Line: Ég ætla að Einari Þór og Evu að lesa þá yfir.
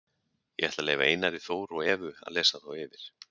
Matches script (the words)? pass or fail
fail